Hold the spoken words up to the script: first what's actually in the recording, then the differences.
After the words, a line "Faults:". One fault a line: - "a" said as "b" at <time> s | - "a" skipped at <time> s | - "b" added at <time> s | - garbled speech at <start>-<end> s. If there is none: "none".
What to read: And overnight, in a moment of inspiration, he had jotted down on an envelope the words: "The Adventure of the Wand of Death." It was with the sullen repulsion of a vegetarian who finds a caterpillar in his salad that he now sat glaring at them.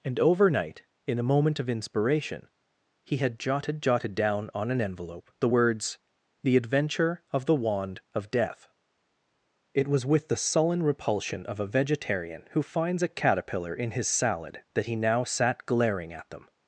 And overnight, in a moment of inspiration, he had jotted jotted down on an envelope the words: "The Adventure of the Wand of Death." It was with the sullen repulsion of a vegetarian who finds a caterpillar in his salad that he now sat glaring at them.
Faults:
- "jotted" added at 3.8 s